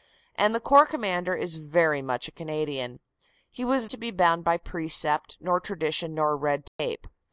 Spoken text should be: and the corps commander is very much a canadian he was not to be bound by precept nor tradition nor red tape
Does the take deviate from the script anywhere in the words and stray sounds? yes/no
yes